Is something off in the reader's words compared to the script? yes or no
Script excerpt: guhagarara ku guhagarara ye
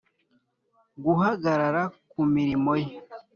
yes